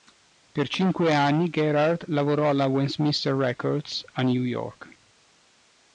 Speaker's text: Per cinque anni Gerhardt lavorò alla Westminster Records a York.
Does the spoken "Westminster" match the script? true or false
true